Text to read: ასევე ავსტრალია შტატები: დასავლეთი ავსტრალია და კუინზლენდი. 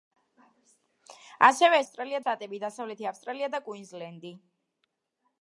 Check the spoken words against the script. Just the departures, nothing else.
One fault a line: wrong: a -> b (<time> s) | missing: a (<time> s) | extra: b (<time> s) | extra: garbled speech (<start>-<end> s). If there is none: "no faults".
no faults